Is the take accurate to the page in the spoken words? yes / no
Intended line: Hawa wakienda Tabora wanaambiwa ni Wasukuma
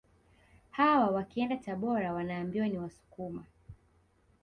yes